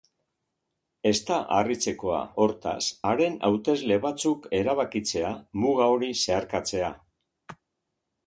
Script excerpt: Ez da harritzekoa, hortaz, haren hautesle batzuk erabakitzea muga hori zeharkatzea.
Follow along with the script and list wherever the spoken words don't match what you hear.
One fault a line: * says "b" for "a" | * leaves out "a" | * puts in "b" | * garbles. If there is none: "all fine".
all fine